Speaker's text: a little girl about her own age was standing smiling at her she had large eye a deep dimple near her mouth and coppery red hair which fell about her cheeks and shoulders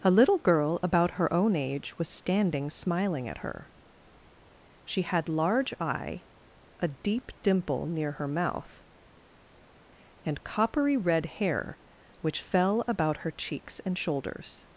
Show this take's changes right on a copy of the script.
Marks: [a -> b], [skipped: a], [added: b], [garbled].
a little girl about her own age was standing smiling at her she had large eye a deep dimple near her mouth and coppery red hair which fell about her cheeks and shoulders